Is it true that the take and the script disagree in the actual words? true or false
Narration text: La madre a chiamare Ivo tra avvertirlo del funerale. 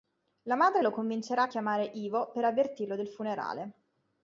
true